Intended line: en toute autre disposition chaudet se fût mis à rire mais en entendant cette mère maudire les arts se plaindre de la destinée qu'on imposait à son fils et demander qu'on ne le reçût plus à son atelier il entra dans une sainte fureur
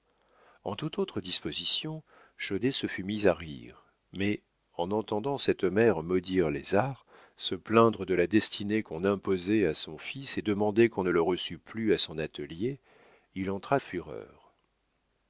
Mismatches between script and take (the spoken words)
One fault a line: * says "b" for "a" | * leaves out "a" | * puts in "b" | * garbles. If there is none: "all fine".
* leaves out "dans une sainte"